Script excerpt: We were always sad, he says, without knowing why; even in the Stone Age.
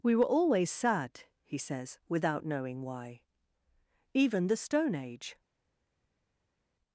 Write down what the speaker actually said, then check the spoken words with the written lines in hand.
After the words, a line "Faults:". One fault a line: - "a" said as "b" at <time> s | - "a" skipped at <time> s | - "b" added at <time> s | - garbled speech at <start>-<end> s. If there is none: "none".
We were always sad, he says, without knowing why; even the Stone Age.
Faults:
- "in" skipped at 4.5 s